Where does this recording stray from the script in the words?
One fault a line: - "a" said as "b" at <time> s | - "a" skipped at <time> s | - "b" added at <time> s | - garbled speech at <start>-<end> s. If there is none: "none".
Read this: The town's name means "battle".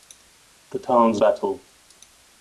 - "name means" skipped at 1.2 s